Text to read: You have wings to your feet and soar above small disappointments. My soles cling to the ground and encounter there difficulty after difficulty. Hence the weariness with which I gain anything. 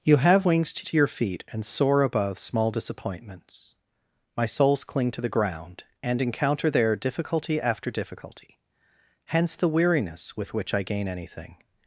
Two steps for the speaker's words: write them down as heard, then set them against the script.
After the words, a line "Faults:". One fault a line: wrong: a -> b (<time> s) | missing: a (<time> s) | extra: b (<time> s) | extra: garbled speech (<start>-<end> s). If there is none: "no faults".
You have wings to to your feet and soar above small disappointments. My soles cling to the ground and encounter there difficulty after difficulty. Hence the weariness with which I gain anything.
Faults:
extra: to (0.8 s)